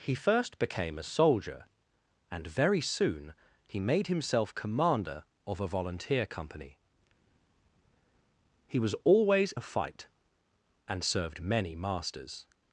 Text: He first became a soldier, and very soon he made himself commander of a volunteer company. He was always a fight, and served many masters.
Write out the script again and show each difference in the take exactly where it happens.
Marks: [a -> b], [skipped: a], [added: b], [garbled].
He first became a soldier, and very soon he made himself commander of a volunteer company. He was always a fight, and served many masters.